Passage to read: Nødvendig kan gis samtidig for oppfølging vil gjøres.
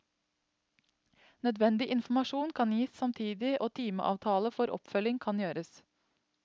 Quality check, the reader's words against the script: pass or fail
fail